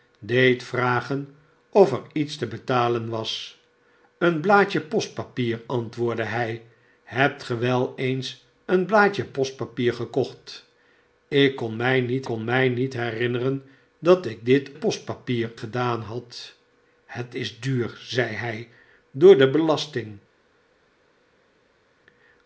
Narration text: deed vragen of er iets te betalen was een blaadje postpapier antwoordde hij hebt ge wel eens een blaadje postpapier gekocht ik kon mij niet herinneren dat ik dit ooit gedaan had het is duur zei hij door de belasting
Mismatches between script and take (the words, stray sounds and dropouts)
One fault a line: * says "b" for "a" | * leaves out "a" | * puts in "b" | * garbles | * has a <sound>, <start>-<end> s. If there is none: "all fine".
* puts in "kon mij niet"
* says "postpapier" for "ooit"